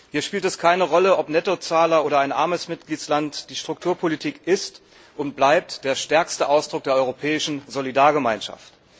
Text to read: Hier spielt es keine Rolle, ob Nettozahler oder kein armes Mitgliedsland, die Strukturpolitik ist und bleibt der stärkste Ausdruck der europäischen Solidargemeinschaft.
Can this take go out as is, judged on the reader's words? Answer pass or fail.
fail